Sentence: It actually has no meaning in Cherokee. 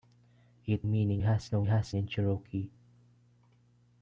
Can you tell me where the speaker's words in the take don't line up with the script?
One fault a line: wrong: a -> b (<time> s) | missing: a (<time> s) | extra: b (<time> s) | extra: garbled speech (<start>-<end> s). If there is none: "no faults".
wrong: actually -> meaning (0.8 s)
wrong: meaning -> has (1.6 s)